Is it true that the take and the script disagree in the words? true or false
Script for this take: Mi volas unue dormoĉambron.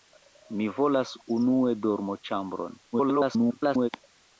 true